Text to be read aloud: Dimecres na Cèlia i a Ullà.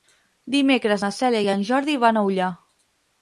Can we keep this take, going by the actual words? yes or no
no